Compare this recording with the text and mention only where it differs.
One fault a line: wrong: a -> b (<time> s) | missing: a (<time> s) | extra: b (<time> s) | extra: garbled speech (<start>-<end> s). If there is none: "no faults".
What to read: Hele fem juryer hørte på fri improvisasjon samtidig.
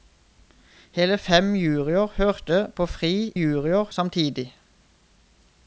wrong: improvisasjon -> juryer (3.3 s)